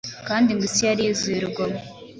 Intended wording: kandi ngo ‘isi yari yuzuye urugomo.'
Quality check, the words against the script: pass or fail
pass